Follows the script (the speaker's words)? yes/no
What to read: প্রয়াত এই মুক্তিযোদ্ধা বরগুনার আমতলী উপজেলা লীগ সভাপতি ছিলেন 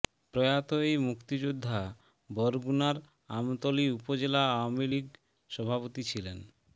no